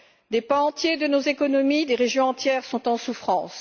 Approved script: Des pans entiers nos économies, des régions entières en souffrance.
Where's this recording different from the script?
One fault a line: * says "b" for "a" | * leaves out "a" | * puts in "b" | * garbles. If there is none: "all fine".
* puts in "de"
* puts in "sont"